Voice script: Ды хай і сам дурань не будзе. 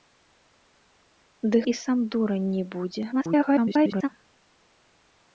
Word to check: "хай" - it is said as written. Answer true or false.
false